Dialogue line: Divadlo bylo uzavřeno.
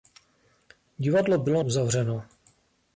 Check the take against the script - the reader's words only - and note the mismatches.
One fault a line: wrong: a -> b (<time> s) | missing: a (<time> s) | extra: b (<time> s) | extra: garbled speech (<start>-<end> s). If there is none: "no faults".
no faults